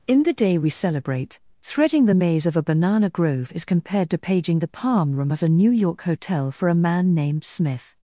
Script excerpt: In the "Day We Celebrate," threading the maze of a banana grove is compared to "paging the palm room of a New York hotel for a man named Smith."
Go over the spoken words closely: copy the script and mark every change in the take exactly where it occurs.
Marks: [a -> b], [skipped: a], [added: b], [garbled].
In the "Day We Celebrate," threading the maze of a banana grove is compared to "paging the palm room of a New York hotel for a man named Smith."